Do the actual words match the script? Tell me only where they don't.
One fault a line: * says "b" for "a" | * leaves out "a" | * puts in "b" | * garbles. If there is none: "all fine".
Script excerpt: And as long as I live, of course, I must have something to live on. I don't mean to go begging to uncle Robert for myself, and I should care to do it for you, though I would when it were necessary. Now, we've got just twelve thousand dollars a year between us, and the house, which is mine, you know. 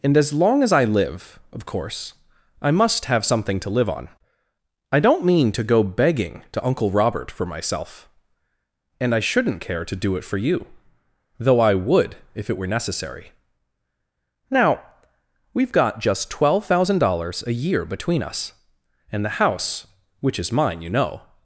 * says "shouldn't" for "should"
* says "if" for "when"